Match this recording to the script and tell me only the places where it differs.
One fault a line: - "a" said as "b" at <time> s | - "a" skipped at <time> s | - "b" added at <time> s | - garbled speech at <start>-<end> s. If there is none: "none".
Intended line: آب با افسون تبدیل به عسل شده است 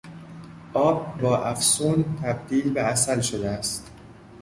none